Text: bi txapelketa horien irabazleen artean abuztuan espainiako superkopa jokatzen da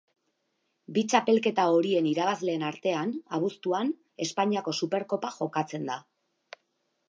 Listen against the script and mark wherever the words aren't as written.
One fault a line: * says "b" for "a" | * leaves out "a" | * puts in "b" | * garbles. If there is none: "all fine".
all fine